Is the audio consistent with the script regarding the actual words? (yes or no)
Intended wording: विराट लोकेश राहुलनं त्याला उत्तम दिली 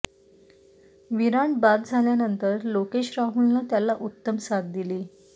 no